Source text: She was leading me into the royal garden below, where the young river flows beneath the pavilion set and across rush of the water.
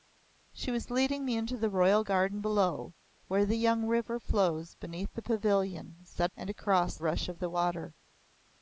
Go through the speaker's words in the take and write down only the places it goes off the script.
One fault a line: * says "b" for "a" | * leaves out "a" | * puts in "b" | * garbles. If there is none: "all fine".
all fine